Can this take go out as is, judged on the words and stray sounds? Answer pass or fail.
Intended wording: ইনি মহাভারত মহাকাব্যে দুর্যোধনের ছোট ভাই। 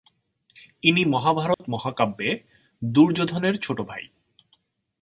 fail